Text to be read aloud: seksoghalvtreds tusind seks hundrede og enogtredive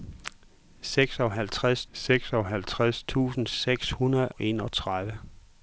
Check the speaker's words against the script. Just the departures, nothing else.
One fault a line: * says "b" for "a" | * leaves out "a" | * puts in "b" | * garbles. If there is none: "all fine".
* puts in "seksoghalvtreds"
* leaves out "og"